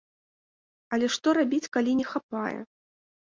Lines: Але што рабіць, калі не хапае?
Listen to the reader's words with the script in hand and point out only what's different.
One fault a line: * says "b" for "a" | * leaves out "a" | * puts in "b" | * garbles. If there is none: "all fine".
all fine